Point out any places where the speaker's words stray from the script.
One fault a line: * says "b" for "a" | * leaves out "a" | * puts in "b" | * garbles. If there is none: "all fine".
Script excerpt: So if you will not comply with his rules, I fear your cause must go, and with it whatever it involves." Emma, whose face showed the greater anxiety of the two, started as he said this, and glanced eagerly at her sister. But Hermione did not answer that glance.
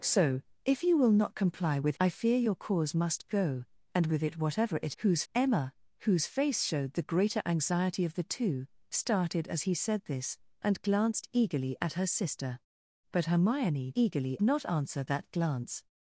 * leaves out "his rules"
* says "whose" for "involves"
* says "eagerly" for "did"